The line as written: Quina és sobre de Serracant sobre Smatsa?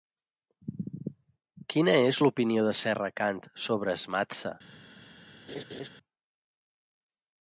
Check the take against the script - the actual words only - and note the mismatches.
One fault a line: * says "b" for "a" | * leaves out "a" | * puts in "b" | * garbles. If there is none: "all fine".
* says "l'opinió" for "sobre"